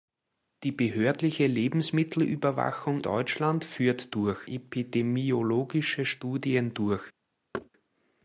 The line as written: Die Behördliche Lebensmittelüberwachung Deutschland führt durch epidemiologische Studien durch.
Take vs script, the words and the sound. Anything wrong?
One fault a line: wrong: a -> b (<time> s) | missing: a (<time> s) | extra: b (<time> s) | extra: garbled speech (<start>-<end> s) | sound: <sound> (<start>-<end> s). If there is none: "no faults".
sound: thud (7.5-7.7 s)